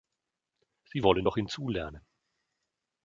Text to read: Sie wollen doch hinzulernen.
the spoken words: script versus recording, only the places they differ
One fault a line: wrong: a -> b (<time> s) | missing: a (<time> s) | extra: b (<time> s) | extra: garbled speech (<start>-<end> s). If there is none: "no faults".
no faults